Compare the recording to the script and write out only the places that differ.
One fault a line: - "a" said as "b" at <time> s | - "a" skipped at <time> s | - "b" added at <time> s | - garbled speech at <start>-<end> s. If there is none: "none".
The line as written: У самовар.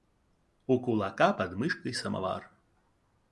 - "кулака под мышкой" added at 0.8 s